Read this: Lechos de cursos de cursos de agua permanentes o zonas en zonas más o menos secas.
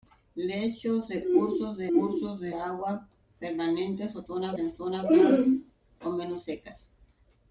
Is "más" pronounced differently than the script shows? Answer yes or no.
no